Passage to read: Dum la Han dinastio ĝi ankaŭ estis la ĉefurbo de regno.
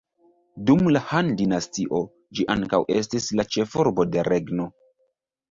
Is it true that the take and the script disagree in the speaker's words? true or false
false